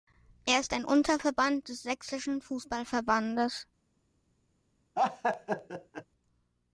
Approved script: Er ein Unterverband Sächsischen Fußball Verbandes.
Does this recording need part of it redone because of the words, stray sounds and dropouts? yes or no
yes